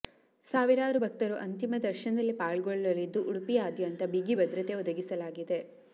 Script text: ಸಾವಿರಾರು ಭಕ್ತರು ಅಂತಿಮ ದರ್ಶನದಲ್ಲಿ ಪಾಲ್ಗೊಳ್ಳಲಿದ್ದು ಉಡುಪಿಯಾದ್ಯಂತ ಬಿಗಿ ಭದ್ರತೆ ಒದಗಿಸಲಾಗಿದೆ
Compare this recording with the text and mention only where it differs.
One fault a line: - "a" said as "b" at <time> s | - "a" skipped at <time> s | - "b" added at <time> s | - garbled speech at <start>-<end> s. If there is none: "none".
none